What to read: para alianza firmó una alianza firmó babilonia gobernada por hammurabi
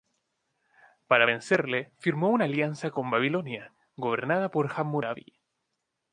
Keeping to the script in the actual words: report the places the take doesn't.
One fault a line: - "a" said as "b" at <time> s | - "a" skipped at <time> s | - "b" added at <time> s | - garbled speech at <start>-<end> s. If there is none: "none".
- "alianza" said as "vencerle" at 1.2 s
- "firmó" said as "con" at 2.9 s